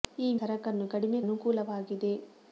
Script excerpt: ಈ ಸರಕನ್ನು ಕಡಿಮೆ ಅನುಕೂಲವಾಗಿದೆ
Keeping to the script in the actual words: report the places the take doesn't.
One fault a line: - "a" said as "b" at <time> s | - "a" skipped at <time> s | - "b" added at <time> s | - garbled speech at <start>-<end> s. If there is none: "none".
none